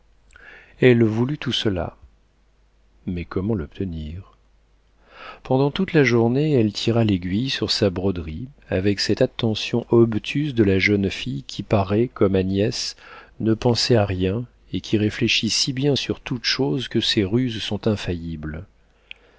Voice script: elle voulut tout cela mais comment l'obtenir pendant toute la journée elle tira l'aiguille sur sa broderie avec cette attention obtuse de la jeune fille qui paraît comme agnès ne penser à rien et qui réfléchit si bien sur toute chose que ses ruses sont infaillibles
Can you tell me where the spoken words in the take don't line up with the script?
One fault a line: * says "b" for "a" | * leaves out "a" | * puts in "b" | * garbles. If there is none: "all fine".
all fine